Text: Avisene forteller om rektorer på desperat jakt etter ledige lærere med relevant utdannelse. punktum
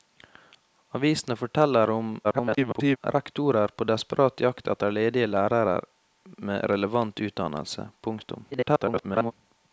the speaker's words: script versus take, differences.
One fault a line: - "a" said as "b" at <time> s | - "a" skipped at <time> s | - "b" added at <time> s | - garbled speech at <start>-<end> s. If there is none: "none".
- garbled speech at 2.2-3.0 s
- garbled speech at 8.5-9.3 s